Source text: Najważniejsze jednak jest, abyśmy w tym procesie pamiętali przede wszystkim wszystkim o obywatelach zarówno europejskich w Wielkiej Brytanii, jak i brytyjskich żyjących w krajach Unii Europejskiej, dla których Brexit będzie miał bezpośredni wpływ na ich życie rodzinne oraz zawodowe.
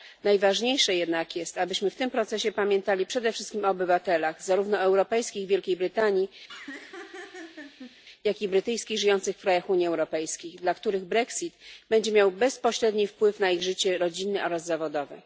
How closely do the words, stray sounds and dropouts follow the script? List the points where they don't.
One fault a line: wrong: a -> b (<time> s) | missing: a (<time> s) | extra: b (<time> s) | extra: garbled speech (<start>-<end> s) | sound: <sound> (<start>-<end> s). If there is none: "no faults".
missing: wszystkim (3.6 s)
sound: laugh (6.5-8.0 s)